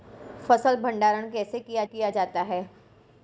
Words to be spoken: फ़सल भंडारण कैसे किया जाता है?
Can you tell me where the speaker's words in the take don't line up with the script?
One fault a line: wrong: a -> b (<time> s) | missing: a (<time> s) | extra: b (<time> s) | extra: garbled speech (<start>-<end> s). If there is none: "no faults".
extra: किया (1.8 s)